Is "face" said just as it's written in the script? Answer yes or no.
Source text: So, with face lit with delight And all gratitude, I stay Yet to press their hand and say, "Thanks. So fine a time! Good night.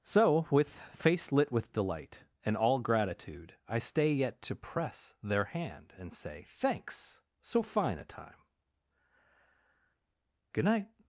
yes